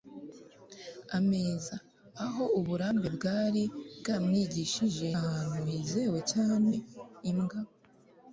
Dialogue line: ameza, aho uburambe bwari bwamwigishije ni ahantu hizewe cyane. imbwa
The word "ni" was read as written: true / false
false